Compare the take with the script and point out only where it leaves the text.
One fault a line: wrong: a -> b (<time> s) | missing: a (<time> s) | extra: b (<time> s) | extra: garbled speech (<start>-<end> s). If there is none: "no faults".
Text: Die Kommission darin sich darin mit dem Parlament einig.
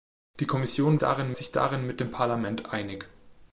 no faults